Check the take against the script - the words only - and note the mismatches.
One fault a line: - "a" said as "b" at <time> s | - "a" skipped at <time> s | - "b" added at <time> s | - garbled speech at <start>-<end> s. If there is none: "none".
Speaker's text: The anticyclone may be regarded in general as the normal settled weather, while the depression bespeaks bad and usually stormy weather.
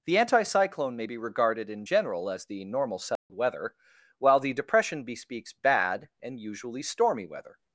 none